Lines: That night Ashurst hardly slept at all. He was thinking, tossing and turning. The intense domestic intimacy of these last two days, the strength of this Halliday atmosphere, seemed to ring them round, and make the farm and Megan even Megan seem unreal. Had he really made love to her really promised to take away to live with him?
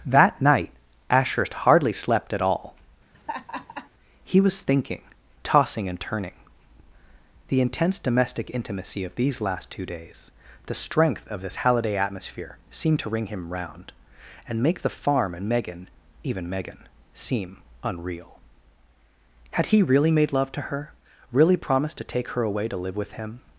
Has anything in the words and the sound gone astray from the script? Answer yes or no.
yes